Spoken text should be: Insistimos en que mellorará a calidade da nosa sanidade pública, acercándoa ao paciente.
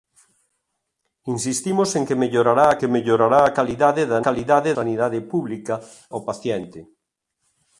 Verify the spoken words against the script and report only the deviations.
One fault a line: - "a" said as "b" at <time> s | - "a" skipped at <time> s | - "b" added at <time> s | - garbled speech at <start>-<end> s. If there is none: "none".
- "que mellorará a" added at 2.8 s
- "nosa" said as "calidade" at 4.3 s
- "acercándoa" skipped at 5.7 s